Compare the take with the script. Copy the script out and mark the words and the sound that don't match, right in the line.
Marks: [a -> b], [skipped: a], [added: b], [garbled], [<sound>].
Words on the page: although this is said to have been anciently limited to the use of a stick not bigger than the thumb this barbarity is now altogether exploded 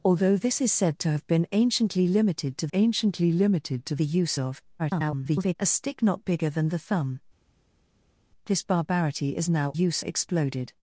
although this is said to have been anciently limited to [added: anciently limited to] the use of [garbled] a stick not bigger than the thumb this barbarity is now [altogether -> use] exploded